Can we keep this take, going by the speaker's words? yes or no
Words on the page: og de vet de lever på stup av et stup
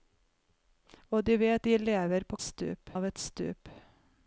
yes